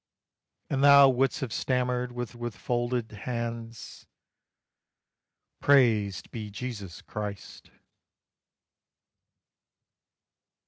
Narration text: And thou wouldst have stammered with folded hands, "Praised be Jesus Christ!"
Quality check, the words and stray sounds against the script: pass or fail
fail